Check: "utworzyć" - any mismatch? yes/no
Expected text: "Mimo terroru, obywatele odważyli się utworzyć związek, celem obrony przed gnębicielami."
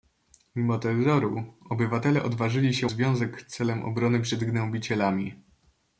yes